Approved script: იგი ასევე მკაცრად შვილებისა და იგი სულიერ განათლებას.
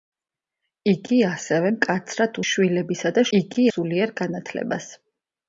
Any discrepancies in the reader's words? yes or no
no